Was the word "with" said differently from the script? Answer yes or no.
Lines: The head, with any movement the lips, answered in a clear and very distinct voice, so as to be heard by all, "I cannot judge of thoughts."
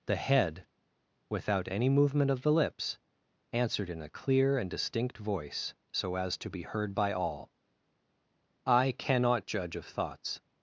yes